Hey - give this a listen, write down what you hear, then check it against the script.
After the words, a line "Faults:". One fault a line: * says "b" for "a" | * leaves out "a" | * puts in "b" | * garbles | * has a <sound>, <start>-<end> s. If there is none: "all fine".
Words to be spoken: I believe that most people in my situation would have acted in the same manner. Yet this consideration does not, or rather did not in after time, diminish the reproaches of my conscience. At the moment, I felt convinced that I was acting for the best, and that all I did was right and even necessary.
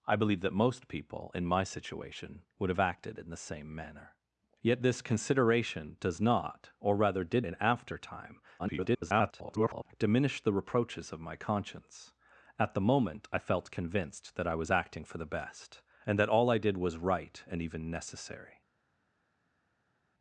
I believe that most people in my situation would have acted in the same manner. Yet this consideration does not, or rather did in after time, [garbled] diminish the reproaches of my conscience. At the moment, I felt convinced that I was acting for the best, and that all I did was right and even necessary.
Faults:
* leaves out "not"
* garbles